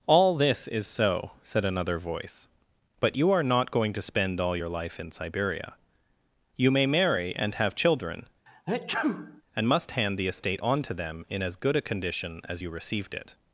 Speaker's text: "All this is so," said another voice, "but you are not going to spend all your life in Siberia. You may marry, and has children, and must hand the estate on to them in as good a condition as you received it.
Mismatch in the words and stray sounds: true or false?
true